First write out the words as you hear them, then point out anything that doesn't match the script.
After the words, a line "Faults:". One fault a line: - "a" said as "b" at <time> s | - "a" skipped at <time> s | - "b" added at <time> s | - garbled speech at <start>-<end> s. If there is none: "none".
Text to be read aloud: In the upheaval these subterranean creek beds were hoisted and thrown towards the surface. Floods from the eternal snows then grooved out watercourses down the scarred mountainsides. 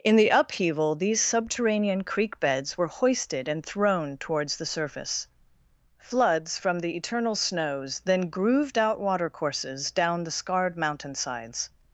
In the upheaval these subterranean creek beds were hoisted and thrown towards the surface. Floods from the eternal snows then grooved out watercourses down the scarred mountainsides.
Faults:
none